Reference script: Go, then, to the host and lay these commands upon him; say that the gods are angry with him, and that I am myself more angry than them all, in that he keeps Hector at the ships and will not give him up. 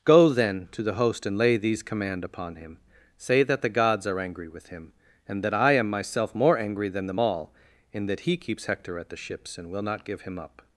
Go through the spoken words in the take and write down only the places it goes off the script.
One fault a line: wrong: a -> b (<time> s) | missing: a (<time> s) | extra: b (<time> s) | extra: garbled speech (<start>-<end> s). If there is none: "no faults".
wrong: commands -> command (1.8 s)